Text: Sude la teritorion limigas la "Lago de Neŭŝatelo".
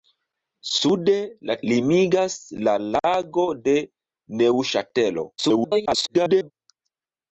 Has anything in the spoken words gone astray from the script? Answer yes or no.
yes